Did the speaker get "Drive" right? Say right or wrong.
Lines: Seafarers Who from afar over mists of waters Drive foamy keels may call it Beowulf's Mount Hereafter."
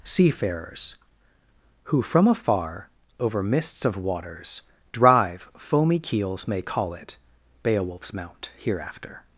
right